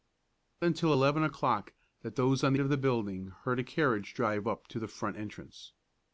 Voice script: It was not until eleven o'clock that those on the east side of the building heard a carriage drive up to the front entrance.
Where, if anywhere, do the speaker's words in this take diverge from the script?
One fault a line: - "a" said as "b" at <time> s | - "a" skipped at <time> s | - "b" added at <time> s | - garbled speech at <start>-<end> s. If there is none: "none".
- "was not" skipped at 0.7 s
- "the east side" skipped at 2.5 s